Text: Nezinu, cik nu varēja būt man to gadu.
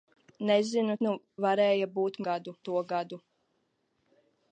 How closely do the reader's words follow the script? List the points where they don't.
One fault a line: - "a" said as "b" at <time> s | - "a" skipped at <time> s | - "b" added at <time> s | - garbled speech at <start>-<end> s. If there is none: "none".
- "cik" skipped at 0.9 s
- "man" said as "gadu" at 2.3 s